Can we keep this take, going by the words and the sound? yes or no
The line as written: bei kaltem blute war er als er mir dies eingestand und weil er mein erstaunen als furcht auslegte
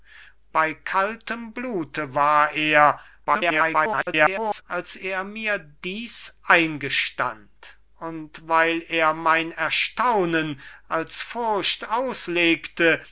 no